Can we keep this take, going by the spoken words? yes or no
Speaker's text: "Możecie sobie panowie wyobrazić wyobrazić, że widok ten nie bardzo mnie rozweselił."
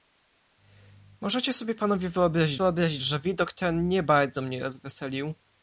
yes